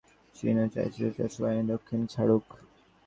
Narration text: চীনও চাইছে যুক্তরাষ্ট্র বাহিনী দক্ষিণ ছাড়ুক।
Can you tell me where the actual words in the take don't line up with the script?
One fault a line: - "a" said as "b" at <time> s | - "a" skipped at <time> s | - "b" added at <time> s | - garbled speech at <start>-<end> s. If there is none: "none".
none